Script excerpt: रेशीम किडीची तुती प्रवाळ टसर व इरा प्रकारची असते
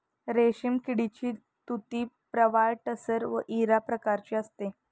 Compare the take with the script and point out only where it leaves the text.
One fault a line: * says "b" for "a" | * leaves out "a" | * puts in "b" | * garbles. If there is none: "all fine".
all fine